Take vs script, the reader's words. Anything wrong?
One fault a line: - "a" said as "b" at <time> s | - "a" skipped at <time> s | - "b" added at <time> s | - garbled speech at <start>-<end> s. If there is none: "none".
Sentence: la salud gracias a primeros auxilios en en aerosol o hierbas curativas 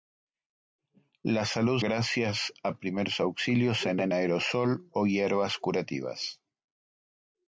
none